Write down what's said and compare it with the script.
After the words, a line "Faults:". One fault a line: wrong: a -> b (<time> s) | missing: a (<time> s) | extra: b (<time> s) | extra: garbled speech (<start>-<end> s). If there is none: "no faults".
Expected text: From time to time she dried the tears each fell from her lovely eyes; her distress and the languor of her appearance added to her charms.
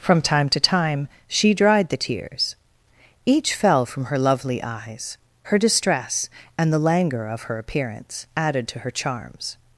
From time to time she dried the tears each fell from her lovely eyes; her distress and the languor of her appearance added to her charms.
Faults:
no faults